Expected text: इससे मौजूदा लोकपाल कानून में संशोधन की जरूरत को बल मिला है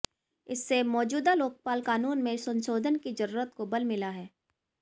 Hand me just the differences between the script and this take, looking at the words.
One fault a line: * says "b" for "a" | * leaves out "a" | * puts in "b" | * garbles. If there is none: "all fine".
all fine